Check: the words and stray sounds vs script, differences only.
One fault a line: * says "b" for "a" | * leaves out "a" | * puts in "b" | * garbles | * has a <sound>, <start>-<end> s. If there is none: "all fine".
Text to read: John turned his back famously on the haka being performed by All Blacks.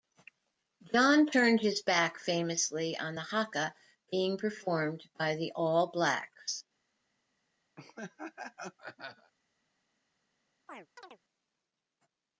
* puts in "the"
* has a laugh, 7.8-9.3 s
* has a chirp, 10.7-11.2 s